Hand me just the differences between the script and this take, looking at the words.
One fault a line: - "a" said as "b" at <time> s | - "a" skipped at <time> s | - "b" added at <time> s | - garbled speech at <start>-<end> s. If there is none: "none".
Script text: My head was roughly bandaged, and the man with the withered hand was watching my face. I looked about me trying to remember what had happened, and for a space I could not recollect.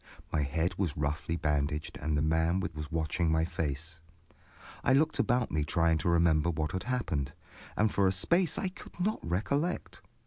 - "the withered hand" skipped at 2.7 s